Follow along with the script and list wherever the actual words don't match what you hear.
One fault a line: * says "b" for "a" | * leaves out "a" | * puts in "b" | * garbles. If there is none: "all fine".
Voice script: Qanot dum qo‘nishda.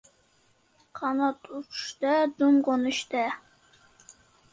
* puts in "uchishda"